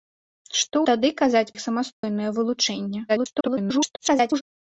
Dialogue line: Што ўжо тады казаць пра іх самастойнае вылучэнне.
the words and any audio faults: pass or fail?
fail